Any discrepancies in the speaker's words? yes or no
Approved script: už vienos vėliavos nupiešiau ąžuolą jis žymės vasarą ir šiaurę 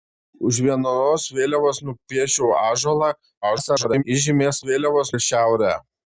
yes